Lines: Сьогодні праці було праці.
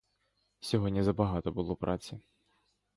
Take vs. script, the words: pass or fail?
fail